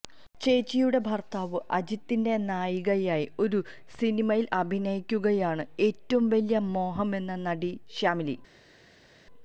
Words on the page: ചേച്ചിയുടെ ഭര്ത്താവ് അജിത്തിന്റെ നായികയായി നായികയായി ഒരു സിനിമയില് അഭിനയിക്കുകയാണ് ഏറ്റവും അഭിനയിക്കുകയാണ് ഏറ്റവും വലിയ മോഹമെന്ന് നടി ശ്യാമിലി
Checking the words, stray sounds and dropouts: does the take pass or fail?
fail